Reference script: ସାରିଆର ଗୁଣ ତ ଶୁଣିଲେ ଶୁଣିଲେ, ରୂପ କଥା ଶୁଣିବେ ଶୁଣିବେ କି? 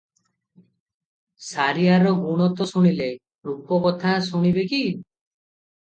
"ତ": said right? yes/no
yes